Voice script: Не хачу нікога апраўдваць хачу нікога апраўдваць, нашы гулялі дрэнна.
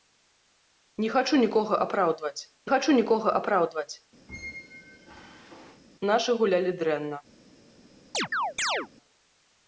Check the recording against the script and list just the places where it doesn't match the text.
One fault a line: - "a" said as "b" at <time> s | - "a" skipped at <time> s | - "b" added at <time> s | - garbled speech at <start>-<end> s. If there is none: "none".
none